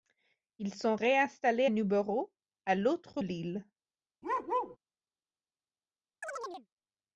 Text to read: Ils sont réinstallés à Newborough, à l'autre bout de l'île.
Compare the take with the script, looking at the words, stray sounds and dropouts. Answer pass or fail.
fail